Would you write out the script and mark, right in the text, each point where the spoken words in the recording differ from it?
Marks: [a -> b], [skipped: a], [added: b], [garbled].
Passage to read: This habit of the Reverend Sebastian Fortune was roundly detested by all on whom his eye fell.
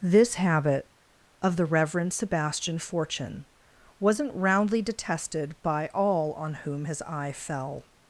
This habit of the Reverend Sebastian Fortune [was -> wasn't] roundly detested by all on whom his eye fell.